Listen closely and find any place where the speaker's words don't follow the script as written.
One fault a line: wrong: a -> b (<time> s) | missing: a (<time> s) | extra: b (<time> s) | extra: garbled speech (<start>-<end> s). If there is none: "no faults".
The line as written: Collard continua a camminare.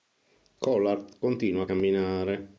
no faults